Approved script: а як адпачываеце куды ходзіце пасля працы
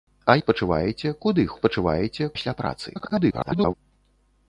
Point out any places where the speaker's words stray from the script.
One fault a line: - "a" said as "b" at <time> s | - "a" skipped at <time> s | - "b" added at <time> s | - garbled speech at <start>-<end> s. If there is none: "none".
- "як" skipped at 0.3 s
- "ходзіце" said as "адпачываеце" at 1.5 s
- garbled speech at 2.9-3.7 s